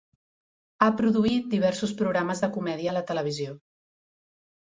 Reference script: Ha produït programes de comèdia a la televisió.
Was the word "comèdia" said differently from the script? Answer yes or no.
no